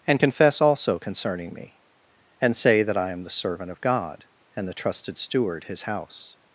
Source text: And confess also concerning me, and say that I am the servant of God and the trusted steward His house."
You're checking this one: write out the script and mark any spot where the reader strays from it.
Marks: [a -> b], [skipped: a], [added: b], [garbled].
And confess also concerning me, and say that I am the servant of God and the trusted steward His house."